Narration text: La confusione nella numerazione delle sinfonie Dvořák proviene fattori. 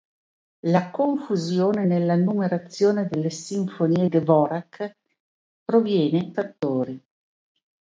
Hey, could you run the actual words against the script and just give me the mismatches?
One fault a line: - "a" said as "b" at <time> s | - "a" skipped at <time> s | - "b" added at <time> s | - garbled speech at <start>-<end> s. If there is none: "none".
none